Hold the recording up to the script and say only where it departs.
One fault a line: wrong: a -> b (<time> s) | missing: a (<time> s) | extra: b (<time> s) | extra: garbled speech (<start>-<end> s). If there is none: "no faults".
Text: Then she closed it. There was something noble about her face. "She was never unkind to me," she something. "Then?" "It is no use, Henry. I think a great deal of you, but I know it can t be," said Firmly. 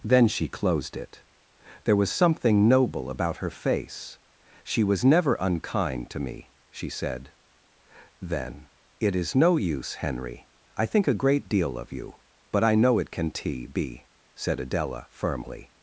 wrong: something -> said (6.9 s)
extra: Adela (14.6 s)